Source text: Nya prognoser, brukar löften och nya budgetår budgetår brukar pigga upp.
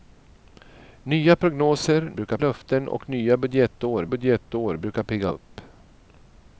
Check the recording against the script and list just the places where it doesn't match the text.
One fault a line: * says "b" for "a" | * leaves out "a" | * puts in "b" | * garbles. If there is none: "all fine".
all fine